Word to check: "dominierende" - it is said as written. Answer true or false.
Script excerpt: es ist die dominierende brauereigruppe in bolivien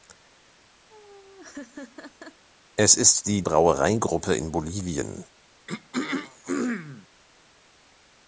false